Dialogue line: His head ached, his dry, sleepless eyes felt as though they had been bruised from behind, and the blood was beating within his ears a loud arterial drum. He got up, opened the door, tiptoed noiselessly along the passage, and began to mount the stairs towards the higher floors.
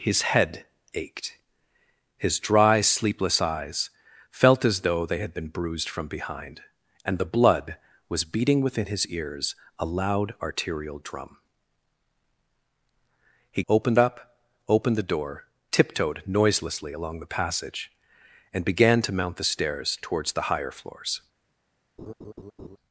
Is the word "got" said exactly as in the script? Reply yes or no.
no